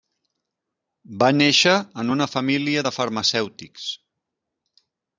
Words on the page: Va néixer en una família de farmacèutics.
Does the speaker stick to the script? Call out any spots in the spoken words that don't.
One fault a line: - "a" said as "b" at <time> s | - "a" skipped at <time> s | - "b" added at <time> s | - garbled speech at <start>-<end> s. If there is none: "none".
none